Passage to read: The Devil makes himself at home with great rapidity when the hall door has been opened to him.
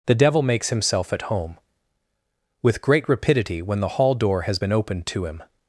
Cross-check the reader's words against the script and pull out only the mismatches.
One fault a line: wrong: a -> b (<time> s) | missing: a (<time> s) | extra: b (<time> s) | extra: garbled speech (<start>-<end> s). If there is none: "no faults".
no faults